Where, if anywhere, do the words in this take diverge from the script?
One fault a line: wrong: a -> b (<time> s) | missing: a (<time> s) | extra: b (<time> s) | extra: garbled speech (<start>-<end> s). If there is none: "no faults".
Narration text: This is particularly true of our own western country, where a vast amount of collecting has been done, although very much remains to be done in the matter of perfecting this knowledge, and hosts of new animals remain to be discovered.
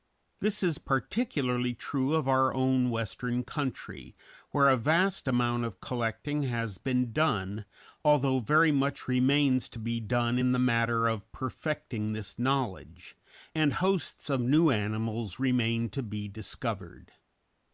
no faults